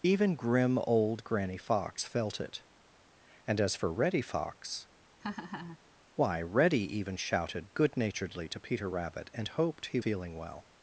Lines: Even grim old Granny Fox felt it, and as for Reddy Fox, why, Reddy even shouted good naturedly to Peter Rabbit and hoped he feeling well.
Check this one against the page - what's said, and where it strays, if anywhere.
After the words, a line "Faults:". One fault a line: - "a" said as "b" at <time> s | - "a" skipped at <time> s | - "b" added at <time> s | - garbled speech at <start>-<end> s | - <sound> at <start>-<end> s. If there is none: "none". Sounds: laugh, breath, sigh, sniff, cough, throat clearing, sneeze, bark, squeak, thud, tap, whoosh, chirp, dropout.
Even grim old Granny Fox felt it, and as for Reddy Fox, why, Reddy even shouted good naturedly to Peter Rabbit and hoped he feeling well.
Faults:
- laugh at 5.2-5.8 s